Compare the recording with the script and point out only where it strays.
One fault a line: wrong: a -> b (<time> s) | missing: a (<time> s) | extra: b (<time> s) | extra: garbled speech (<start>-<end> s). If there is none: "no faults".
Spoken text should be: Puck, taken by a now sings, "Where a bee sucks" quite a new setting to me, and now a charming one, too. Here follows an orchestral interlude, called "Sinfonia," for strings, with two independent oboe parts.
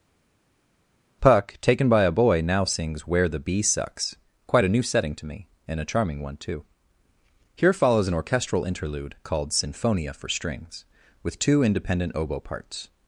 extra: boy (2.1 s)
wrong: a -> the (3.3 s)
missing: now (5.8 s)